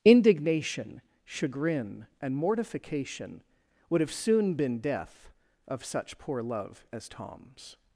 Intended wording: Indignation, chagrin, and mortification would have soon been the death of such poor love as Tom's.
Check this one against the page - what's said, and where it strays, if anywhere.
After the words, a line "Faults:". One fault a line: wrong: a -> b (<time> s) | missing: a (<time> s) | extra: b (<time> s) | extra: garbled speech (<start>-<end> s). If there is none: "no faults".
Indignation, chagrin, and mortification would have soon been death of such poor love as Tom's.
Faults:
missing: the (4.8 s)